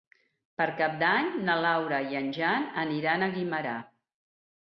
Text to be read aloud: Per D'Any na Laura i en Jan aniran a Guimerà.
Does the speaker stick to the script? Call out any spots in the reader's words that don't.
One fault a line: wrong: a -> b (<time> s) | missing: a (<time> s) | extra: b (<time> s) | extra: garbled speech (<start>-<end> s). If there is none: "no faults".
extra: Cap (0.8 s)